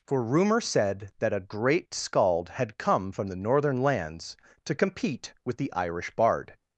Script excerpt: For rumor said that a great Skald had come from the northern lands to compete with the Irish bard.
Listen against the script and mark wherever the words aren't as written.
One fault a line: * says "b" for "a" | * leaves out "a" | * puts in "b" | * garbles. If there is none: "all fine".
all fine